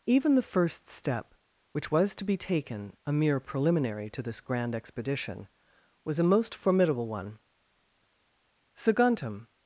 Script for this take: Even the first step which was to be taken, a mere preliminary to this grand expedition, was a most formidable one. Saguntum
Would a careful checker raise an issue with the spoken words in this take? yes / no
no